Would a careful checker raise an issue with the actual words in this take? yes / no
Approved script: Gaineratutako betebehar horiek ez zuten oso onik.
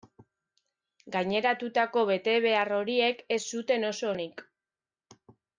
no